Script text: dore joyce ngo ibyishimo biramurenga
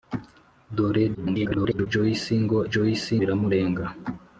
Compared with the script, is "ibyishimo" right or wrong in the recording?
wrong